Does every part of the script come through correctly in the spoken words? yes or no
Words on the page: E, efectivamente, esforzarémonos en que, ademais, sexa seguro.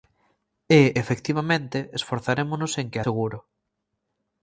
no